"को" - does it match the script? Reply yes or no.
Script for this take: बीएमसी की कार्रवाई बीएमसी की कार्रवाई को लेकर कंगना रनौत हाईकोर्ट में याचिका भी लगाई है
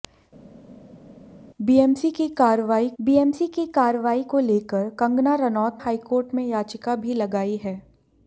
yes